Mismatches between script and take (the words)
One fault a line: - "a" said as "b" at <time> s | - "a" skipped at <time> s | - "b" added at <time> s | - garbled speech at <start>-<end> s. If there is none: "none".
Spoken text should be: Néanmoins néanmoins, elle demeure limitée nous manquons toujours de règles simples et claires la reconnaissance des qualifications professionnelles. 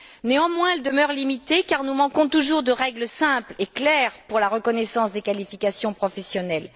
- "néanmoins" skipped at 0.7 s
- "car" added at 1.6 s
- "pour" added at 4.3 s